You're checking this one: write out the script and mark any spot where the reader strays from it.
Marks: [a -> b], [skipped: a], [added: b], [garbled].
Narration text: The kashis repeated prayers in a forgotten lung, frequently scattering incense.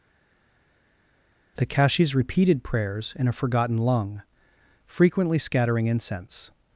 The kashis repeated prayers in a forgotten lung, frequently scattering incense.